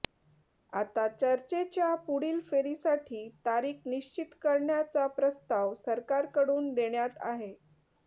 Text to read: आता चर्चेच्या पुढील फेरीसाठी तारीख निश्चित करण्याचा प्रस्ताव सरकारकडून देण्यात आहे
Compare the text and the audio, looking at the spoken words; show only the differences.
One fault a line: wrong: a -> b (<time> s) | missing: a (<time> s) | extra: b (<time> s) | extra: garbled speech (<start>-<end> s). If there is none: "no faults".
no faults